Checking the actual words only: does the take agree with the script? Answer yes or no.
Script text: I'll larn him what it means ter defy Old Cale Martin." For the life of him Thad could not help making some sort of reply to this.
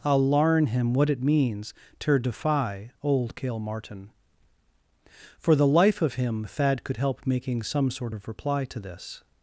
no